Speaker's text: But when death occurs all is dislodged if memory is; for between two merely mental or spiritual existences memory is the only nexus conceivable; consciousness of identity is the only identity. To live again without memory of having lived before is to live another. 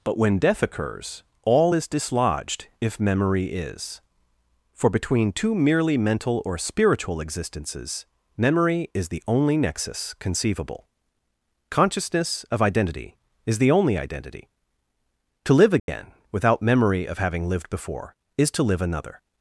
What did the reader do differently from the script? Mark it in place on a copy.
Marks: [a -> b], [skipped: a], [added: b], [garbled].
But when death occurs all is dislodged if memory is; for between two merely mental or spiritual existences memory is the only nexus conceivable; consciousness of identity is the only identity. To live again without memory of having lived before is to live another.